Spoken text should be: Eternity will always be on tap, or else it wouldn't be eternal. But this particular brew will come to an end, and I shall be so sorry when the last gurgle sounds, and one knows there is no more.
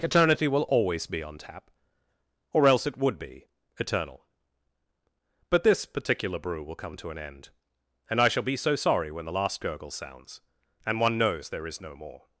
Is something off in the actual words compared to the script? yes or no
yes